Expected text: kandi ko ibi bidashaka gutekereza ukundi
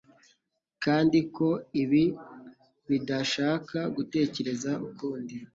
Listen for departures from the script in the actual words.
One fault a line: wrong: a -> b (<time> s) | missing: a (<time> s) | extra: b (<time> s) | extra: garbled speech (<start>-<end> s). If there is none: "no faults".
no faults